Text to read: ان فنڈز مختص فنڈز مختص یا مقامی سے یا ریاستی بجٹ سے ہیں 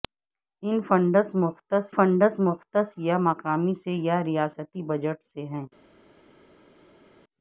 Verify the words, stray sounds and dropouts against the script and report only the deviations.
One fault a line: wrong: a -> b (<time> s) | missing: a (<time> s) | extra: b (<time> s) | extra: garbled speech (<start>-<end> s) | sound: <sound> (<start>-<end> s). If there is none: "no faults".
no faults